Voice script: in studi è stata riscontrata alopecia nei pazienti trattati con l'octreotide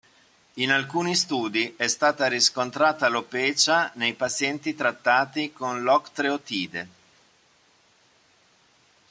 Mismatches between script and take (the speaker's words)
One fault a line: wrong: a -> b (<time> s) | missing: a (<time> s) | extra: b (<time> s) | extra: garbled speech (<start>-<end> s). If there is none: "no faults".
extra: alcuni (0.7 s)